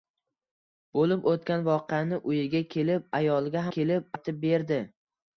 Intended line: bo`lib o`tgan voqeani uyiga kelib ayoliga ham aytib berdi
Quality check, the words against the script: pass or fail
fail